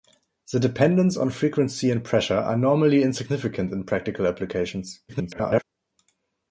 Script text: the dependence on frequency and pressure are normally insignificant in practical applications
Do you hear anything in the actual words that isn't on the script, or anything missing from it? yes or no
yes